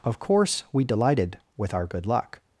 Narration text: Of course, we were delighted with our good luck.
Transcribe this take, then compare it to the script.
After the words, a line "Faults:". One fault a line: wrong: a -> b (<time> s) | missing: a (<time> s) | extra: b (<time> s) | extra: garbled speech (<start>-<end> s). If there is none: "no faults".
Of course, we delighted with our good luck.
Faults:
missing: were (0.8 s)